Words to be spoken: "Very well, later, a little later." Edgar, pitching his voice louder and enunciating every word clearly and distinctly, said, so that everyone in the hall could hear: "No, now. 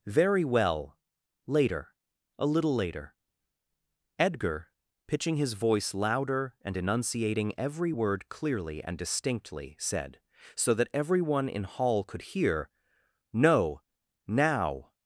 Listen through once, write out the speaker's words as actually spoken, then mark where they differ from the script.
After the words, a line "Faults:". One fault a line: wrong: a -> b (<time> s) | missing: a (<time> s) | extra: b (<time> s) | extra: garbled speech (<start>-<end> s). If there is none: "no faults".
"Very well, later, a little later." Edgar, pitching his voice louder and enunciating every word clearly and distinctly, said, so that everyone in hall could hear: "No, now.
Faults:
missing: the (11.6 s)